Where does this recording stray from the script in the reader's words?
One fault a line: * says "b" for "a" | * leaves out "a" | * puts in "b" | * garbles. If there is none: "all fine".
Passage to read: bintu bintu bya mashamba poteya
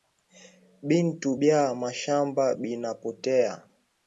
* leaves out "bintu"
* puts in "bina"